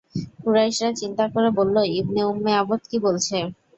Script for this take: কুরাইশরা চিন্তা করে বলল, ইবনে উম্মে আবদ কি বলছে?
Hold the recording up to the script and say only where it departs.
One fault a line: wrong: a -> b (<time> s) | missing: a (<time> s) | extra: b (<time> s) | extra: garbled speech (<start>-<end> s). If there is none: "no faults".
no faults